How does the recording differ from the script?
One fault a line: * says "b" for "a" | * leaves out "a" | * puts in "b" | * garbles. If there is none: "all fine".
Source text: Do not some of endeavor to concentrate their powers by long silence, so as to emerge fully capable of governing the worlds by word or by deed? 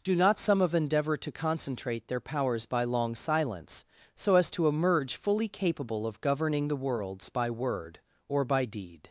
all fine